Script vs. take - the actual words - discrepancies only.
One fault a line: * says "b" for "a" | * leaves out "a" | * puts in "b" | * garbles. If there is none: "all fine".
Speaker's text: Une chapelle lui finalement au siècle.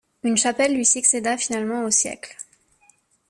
* puts in "succéda"